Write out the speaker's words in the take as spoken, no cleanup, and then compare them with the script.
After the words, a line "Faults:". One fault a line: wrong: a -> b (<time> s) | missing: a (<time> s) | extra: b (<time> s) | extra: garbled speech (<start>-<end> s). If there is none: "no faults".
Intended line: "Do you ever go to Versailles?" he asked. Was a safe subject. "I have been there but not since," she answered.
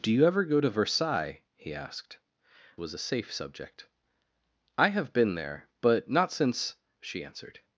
"Do you ever go to Versailles?" he asked. Was a safe subject. "I have been there but not since," she answered.
Faults:
no faults